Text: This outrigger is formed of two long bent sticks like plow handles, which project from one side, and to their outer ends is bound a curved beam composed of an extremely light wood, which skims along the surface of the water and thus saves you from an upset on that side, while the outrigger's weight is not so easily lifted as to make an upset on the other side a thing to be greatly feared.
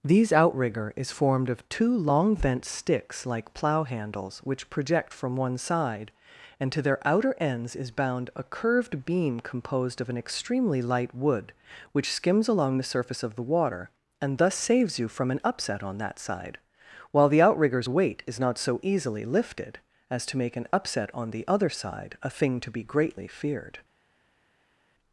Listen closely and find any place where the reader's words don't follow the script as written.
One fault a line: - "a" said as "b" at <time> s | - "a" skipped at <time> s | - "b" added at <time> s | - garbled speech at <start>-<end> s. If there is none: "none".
- "This" said as "These" at 0.0 s